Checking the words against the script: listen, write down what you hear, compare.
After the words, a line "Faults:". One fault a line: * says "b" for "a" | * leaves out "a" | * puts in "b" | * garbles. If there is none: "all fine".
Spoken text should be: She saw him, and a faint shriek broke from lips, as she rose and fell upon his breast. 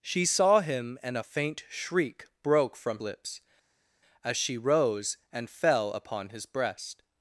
She saw him, and a faint shriek broke from lips, as she rose and fell upon his breast.
Faults:
all fine